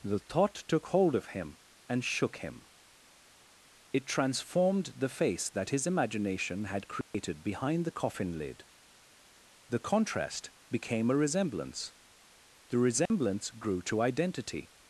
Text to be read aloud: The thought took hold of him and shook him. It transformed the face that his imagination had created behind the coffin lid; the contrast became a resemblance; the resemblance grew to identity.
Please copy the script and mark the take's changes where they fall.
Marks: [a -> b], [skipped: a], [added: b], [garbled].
The thought took hold of him and shook him. It transformed the face that his imagination had created behind the coffin lid; the contrast became a resemblance; the resemblance grew to identity.